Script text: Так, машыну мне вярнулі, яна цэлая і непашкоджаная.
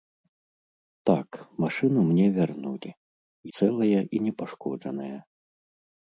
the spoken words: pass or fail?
fail